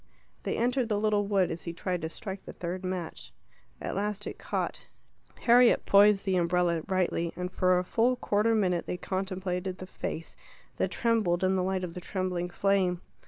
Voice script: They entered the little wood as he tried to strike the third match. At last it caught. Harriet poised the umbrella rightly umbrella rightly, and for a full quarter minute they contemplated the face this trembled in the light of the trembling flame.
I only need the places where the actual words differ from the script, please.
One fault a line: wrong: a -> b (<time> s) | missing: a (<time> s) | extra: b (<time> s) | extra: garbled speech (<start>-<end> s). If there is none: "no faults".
missing: umbrella rightly (7.3 s)
wrong: this -> that (10.8 s)